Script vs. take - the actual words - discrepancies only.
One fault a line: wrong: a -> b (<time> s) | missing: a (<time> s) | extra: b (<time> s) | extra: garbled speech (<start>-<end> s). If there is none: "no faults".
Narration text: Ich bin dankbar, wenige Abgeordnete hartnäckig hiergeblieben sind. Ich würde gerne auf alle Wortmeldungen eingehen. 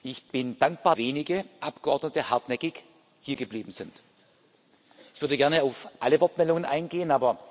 no faults